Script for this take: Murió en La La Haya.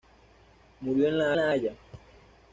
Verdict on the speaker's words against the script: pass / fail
pass